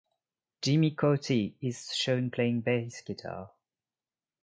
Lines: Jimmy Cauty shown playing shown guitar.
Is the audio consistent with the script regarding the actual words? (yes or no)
no